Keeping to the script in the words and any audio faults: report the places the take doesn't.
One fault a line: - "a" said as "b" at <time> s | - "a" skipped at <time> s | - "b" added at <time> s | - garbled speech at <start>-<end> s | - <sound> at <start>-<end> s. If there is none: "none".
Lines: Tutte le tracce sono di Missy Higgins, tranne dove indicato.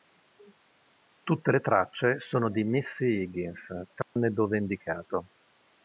- dropout at 4.0-4.2 s